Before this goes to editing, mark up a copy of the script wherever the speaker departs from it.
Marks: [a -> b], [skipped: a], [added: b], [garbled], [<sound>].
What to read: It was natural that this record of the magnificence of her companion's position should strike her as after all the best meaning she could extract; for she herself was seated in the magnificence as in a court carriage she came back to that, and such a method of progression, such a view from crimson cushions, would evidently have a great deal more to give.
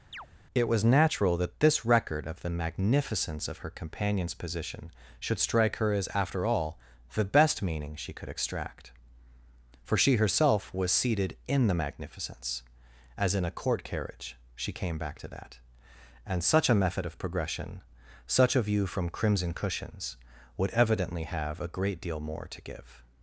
[chirp] It was natural that this record of the magnificence of her companion's position should strike her as after all the best meaning she could extract; for she herself was seated in the magnificence as in a court carriage she came back to that, and such a method of progression, such a view from crimson cushions, would evidently have a great deal more to give.